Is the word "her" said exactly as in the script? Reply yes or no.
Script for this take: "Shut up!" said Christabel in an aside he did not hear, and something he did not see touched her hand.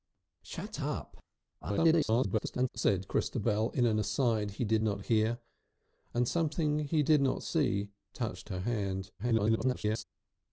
yes